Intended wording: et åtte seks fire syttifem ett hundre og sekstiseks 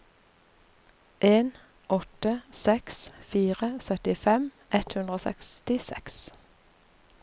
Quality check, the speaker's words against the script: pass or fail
fail